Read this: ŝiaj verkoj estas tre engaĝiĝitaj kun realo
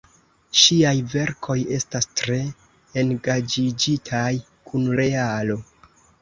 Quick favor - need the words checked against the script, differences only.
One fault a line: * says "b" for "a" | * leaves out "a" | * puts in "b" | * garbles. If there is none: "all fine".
all fine